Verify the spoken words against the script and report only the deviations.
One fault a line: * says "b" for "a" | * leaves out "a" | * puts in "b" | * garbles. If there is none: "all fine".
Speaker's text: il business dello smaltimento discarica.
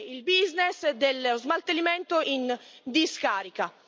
* puts in "in"